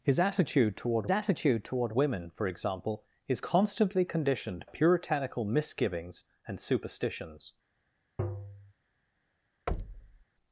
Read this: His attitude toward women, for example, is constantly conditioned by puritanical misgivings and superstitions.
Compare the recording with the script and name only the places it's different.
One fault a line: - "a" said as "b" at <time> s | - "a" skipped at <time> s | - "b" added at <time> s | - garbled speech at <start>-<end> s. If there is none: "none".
- "attitude toward" added at 1.1 s
- "by" skipped at 4.7 s